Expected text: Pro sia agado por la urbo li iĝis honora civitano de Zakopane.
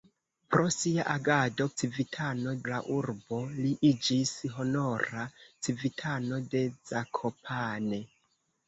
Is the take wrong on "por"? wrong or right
wrong